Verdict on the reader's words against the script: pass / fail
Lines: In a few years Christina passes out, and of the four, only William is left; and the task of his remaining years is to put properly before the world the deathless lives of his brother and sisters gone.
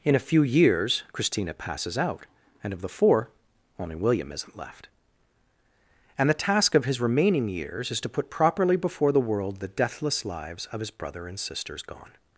fail